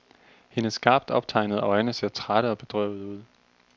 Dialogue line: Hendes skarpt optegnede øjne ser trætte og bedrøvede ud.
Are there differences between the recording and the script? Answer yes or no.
no